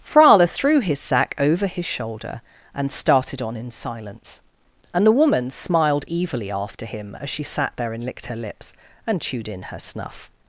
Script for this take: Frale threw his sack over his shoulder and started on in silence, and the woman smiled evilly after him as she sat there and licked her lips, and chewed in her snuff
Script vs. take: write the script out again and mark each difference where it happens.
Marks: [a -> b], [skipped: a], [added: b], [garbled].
Frale threw his sack over his shoulder and started on in silence, and the woman smiled evilly after him as she sat there and licked her lips, and chewed in her snuff